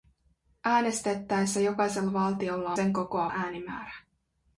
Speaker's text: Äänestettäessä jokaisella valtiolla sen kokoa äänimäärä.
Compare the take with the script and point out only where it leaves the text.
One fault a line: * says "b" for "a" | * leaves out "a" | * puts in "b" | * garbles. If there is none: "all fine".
all fine